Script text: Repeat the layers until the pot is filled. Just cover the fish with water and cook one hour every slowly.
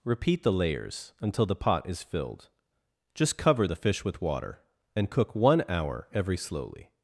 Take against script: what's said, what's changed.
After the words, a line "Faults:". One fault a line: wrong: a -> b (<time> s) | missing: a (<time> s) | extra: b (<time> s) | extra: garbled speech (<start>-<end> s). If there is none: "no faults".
Repeat the layers until the pot is filled. Just cover the fish with water and cook one hour every slowly.
Faults:
no faults